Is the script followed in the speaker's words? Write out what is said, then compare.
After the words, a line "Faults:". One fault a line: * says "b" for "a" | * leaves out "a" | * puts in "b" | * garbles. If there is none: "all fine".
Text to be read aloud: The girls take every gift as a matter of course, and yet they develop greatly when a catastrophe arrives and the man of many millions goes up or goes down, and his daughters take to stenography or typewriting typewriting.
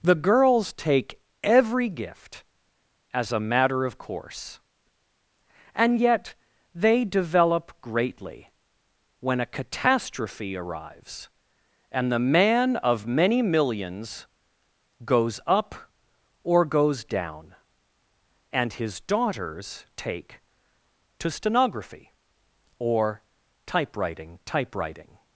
The girls take every gift as a matter of course, and yet they develop greatly when a catastrophe arrives and the man of many millions goes up or goes down, and his daughters take to stenography or typewriting typewriting.
Faults:
all fine